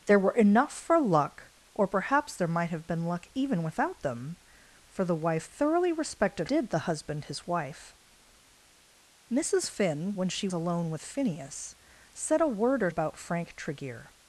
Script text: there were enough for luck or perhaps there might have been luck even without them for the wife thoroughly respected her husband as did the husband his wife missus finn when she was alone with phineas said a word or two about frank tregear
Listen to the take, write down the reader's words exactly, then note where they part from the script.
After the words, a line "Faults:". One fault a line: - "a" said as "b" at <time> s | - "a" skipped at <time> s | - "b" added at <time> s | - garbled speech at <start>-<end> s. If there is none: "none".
there were enough for luck or perhaps there might have been luck even without them for the wife thoroughly respected did the husband his wife missus finn when she alone with phineas said a word or about frank tregear
Faults:
- "her husband as" skipped at 6.5 s
- "was" skipped at 10.5 s
- "two" skipped at 12.9 s